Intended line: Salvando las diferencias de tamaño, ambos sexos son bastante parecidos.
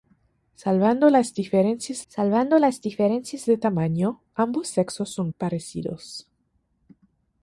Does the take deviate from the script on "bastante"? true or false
true